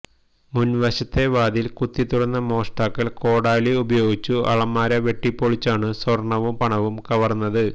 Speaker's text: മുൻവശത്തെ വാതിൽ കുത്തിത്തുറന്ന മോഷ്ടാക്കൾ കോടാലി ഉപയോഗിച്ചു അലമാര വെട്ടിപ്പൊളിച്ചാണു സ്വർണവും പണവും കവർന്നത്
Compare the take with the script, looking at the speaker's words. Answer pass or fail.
pass